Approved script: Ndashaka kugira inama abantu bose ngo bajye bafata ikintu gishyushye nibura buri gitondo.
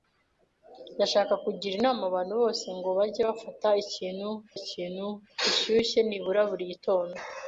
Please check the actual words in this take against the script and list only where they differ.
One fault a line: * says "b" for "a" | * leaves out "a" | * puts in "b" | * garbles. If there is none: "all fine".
* puts in "ikintu"